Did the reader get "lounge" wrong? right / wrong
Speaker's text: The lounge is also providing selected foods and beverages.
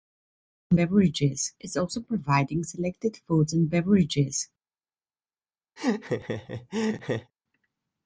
wrong